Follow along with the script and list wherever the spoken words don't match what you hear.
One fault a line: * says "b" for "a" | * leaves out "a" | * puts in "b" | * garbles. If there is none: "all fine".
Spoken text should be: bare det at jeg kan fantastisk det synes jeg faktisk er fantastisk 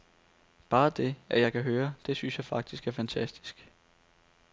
* says "høre" for "fantastisk"